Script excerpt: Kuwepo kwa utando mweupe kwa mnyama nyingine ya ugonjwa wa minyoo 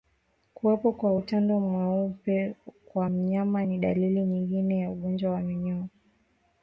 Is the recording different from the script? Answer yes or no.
yes